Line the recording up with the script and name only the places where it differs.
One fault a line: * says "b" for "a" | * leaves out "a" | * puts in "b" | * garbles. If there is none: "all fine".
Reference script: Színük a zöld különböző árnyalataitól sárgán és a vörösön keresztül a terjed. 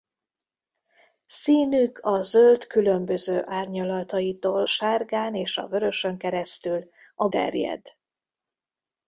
all fine